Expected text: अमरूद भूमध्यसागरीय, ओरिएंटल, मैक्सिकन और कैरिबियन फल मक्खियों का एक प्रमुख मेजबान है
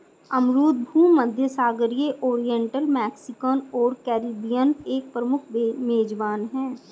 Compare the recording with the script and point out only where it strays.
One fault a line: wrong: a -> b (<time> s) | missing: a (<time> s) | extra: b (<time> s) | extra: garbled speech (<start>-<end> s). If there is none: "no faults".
missing: फल मक्खियों का (4.7 s)